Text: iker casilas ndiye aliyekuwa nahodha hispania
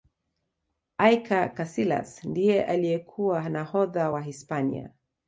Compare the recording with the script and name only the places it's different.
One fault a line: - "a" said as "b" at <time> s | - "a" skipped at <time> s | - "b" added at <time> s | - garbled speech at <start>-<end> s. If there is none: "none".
- "wa" added at 4.1 s